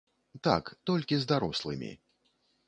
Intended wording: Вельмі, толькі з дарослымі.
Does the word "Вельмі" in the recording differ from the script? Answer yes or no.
yes